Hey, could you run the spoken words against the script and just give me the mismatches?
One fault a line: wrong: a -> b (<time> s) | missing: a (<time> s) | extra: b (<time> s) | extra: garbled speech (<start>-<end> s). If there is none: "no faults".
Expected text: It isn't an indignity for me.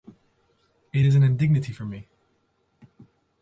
wrong: isn't -> is (1.0 s)